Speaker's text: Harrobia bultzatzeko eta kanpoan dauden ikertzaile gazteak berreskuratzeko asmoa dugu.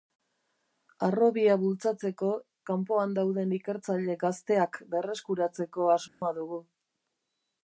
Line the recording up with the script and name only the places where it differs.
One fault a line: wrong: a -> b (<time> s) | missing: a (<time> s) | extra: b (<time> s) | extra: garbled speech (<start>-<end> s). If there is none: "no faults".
missing: eta (2.3 s)